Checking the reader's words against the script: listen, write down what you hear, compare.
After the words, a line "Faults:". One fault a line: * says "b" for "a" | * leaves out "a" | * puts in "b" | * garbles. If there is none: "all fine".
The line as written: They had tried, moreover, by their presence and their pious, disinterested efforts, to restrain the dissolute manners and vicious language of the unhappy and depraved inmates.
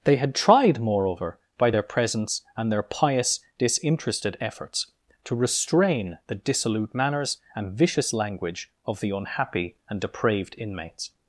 They had tried, moreover, by their presence and their pious, disinterested efforts, to restrain the dissolute manners and vicious language of the unhappy and depraved inmates.
Faults:
all fine